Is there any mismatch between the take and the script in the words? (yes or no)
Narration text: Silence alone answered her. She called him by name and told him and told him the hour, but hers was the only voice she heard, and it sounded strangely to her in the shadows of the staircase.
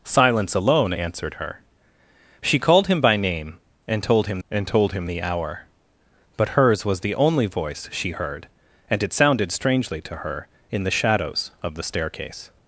no